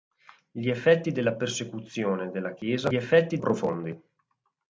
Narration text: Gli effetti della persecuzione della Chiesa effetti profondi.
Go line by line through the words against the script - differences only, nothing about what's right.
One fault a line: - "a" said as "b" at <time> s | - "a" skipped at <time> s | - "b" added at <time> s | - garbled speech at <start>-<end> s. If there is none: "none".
none